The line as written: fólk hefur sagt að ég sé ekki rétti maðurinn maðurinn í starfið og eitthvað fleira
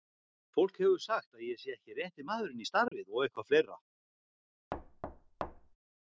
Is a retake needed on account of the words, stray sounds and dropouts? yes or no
yes